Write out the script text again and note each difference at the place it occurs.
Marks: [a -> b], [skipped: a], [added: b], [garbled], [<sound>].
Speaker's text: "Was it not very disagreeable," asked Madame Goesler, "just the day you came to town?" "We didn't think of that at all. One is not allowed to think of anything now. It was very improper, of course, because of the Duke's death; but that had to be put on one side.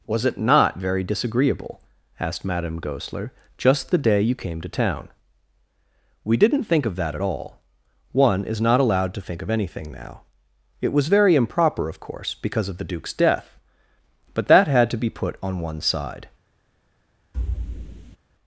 "Was it not very disagreeable," asked Madame Goesler, "just the day you came to town?" "We didn't think of that at all. One is not allowed to think of anything now. It was very improper, of course, because of the Duke's death; but that had to be put on one side. [thud]